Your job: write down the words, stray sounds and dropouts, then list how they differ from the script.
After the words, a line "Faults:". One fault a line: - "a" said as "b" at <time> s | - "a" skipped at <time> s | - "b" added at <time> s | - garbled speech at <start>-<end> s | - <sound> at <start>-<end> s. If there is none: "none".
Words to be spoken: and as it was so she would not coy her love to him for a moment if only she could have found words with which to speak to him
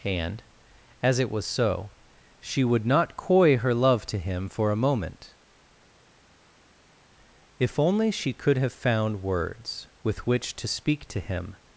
and as it was so she would not coy her love to him for a moment if only she could have found words with which to speak to him
Faults:
none